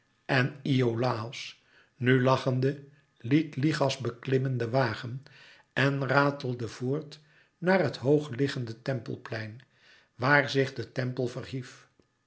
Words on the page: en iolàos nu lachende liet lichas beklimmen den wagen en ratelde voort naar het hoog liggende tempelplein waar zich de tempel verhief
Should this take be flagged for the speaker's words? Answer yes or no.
no